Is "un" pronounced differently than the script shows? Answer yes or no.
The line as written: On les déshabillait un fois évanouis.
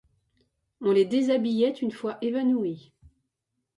yes